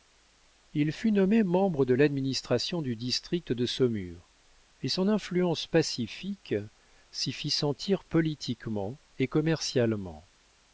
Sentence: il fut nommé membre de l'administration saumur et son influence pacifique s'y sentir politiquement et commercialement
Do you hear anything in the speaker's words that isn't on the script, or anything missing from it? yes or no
yes